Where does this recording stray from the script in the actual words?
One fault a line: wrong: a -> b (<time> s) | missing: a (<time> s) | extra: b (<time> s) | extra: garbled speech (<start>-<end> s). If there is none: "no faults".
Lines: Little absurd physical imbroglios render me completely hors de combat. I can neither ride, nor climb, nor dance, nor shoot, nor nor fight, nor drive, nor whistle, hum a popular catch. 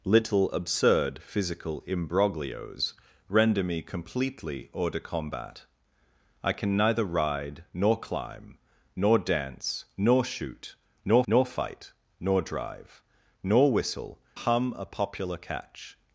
no faults